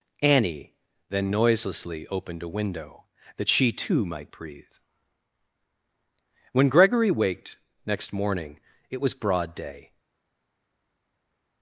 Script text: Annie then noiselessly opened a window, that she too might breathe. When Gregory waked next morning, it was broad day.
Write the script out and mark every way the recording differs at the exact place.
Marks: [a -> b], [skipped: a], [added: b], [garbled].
Annie then noiselessly opened a window, that she too might breathe. When Gregory waked next morning, it was broad day.